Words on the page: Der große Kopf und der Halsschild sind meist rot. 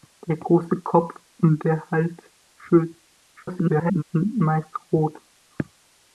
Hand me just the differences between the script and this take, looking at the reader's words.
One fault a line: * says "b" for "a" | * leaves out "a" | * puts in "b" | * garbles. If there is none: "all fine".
* garbles